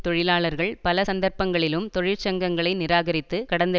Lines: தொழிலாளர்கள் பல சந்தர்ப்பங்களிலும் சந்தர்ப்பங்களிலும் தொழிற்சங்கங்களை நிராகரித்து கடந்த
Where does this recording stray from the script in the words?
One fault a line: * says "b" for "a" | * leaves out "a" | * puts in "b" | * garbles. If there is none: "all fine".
* leaves out "சந்தர்ப்பங்களிலும்"